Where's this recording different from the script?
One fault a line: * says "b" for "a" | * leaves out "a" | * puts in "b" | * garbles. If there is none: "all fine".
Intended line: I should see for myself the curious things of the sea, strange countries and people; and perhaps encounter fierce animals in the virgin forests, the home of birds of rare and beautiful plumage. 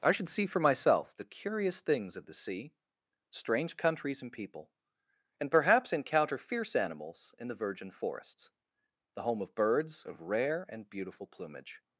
all fine